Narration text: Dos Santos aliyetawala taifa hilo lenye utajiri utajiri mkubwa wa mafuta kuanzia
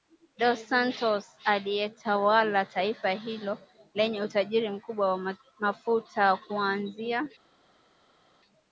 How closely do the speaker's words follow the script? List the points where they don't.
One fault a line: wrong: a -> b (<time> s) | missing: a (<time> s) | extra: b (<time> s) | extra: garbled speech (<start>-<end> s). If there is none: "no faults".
missing: utajiri (4.7 s)